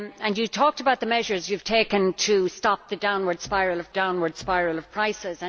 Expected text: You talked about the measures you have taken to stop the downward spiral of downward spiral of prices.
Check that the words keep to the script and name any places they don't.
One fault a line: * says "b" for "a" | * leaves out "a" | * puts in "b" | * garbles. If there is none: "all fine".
all fine